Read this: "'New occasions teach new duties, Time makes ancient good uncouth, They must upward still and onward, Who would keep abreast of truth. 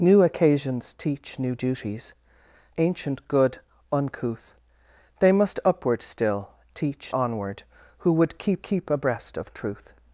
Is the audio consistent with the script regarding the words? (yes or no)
no